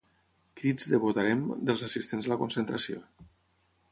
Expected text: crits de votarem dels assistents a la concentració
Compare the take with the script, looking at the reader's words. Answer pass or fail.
pass